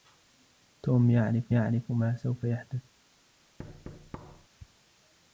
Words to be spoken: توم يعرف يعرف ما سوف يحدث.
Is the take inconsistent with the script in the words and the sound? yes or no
yes